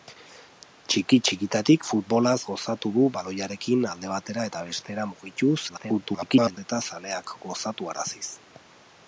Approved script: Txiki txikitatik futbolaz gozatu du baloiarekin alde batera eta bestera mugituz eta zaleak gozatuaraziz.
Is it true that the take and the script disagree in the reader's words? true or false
true